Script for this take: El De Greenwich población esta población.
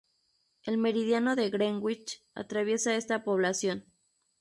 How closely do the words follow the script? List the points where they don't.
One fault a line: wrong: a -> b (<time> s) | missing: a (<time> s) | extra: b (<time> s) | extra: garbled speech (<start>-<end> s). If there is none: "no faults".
extra: Meridiano (0.8 s)
wrong: población -> atraviesa (2.3 s)